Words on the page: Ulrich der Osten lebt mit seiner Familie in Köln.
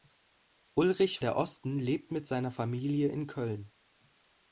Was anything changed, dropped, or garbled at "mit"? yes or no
no